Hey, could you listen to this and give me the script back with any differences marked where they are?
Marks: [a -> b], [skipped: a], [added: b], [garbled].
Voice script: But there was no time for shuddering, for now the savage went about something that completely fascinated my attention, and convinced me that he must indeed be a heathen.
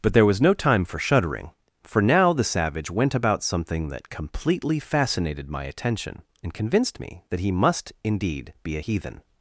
But there was no time for shuddering, for now the savage went about something that completely fascinated my attention, and convinced me that he must indeed be a heathen.